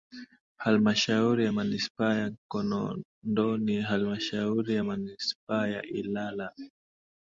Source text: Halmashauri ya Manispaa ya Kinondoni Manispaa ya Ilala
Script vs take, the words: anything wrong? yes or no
yes